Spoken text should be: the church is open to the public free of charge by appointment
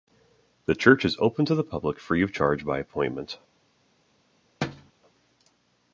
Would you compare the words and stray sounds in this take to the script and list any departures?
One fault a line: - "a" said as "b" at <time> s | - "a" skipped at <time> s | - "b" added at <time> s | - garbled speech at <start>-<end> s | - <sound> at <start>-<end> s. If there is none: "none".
- thud at 4.6-4.9 s